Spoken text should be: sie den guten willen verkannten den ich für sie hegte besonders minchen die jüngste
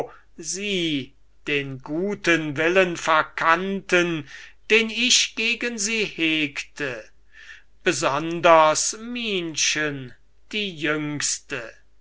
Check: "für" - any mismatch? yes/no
yes